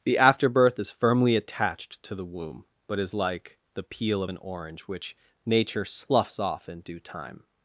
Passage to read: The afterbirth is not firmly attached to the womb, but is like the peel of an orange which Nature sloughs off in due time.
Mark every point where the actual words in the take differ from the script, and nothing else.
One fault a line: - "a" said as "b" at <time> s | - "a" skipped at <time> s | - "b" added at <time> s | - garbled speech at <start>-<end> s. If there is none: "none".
- "not" skipped at 0.9 s